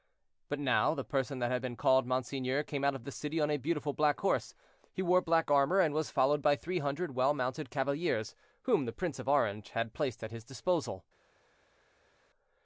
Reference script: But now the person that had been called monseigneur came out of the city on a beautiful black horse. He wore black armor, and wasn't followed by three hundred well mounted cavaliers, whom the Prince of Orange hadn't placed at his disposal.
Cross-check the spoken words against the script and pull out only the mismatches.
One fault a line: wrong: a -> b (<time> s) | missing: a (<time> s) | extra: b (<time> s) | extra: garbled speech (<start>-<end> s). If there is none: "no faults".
wrong: wasn't -> was (5.9 s)
wrong: hadn't -> had (9.7 s)